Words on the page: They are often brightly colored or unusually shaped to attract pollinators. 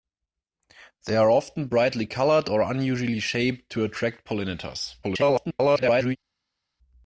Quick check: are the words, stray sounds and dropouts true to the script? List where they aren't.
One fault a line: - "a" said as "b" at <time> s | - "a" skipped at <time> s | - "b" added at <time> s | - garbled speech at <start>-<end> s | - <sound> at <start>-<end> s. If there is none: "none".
- garbled speech at 5.0-6.2 s